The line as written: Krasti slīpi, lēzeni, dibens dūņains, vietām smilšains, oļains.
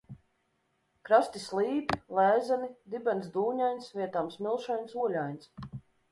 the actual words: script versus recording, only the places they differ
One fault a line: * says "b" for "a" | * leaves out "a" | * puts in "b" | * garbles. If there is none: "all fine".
all fine